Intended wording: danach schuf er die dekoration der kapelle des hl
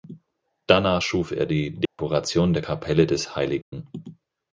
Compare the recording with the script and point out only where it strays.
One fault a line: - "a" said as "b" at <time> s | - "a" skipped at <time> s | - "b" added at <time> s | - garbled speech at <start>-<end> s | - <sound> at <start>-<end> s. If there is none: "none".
- dropout at 1.9-2.0 s
- dropout at 3.6-3.7 s